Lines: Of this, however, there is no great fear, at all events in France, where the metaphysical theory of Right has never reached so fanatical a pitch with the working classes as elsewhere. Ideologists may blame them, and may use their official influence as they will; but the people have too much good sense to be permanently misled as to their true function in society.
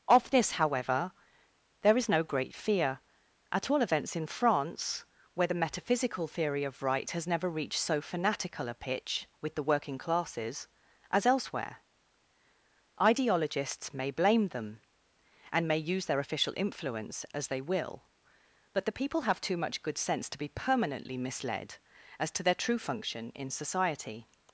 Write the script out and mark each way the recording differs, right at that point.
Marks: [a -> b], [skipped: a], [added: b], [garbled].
Of this, however, there is no great fear, at all events in France, where the metaphysical theory of Right has never reached so fanatical a pitch with the working classes as elsewhere. Ideologists may blame them, and may use their official influence as they will; but the people have too much good sense to be permanently misled as to their true function in society.